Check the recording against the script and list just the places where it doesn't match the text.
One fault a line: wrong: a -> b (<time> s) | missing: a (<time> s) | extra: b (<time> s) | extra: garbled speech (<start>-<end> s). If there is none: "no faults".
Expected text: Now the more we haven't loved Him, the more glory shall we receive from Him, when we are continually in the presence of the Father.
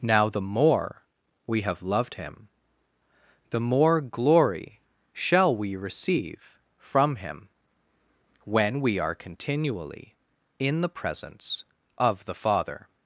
wrong: haven't -> have (1.6 s)